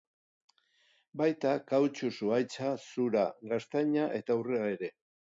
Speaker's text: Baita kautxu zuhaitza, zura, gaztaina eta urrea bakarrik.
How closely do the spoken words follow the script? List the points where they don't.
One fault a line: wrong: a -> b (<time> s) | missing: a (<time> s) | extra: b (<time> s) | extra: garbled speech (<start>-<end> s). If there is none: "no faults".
wrong: bakarrik -> ere (4.8 s)